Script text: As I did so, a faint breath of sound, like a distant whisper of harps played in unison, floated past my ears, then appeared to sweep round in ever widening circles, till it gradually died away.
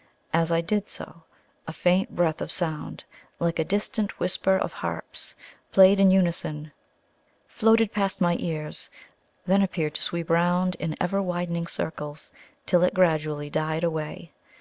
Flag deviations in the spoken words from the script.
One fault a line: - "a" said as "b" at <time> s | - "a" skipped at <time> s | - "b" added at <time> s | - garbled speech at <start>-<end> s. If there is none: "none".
none